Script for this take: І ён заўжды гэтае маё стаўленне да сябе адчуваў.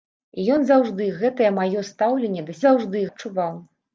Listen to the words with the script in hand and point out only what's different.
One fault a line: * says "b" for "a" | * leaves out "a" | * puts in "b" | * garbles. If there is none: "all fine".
* says "заўжды" for "сябе"